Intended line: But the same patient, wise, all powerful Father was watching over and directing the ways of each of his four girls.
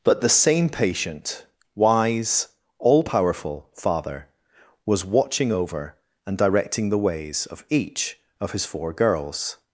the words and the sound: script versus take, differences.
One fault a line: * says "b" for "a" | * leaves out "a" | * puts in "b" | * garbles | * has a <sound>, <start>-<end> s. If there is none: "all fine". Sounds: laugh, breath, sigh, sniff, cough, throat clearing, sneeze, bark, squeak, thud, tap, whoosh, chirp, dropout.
all fine